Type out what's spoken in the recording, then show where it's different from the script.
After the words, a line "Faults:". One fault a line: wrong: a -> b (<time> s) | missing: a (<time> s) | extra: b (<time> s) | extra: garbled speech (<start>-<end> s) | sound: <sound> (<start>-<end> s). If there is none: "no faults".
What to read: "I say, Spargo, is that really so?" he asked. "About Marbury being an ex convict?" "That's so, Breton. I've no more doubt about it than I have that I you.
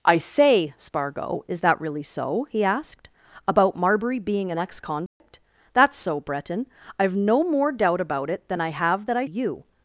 "I say, Spargo, is that really so?" he asked. "About Marbury being an ex convict?" "That's so, Breton. I've no more doubt about it than I have that I you.
Faults:
sound: dropout (5.1-5.2 s)